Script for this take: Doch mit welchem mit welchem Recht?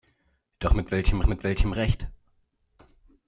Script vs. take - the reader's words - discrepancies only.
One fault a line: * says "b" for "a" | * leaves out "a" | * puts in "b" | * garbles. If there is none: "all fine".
all fine